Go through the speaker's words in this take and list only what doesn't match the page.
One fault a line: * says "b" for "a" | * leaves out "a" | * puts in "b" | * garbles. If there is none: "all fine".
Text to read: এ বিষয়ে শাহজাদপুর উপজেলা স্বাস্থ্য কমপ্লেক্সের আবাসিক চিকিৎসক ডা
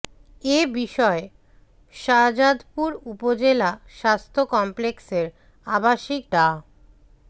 * leaves out "চিকিৎসক"